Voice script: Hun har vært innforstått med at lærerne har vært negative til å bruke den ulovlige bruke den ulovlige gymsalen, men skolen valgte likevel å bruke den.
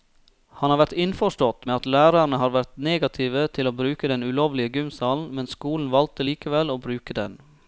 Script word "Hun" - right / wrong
wrong